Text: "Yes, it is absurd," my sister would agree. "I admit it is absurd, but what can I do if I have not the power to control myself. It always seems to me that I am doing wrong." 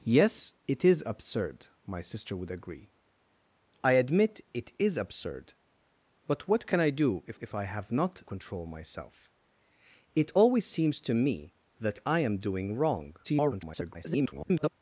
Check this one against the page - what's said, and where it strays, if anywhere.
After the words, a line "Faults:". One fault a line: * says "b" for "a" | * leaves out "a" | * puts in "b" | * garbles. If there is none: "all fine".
"Yes, it is absurd," my sister would agree. "I admit it is absurd, but what can I do if if I have not control myself. It always seems to me that I am doing wrong." [garbled]
Faults:
* puts in "if"
* leaves out "the power to"
* garbles